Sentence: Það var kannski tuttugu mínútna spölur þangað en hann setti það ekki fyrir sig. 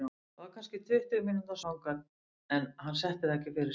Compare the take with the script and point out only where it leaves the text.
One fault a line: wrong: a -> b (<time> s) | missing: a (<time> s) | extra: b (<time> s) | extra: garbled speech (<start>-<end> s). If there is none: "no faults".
missing: spölur (1.6 s)